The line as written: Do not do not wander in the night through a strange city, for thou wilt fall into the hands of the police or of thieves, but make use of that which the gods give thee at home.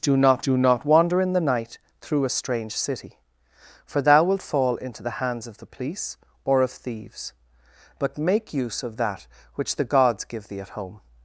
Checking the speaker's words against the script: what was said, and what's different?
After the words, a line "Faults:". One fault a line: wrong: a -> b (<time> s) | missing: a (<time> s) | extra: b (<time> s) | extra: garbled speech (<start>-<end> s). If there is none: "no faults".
Do not do not wander in the night through a strange city, for thou wilt fall into the hands of the police or of thieves, but make use of that which the gods give thee at home.
Faults:
no faults